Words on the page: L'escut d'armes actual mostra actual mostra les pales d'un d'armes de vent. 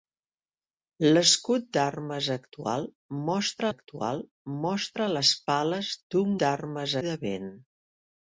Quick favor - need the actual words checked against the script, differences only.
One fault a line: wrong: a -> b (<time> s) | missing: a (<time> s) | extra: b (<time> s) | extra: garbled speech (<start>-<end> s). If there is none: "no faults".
no faults